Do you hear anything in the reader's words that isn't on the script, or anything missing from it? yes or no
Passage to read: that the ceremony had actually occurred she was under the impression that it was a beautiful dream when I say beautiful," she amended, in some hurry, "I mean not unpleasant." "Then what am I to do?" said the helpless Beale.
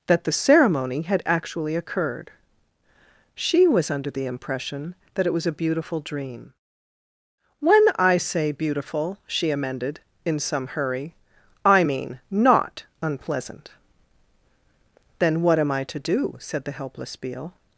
no